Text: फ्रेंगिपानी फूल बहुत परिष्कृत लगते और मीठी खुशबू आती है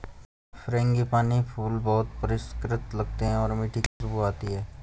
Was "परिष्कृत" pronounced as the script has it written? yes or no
yes